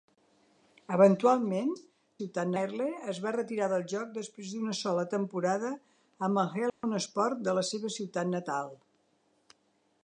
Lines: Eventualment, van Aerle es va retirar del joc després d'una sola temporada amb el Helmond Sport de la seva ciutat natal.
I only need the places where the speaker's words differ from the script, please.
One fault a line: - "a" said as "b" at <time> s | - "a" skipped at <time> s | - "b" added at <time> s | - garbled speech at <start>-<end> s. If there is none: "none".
- "van" said as "ciutat" at 2.2 s